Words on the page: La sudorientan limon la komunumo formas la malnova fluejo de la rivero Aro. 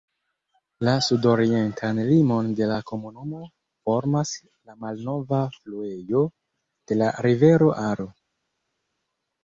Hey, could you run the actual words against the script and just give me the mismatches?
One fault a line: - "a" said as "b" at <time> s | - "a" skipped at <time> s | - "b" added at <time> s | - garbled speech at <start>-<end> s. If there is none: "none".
- "de" added at 2.6 s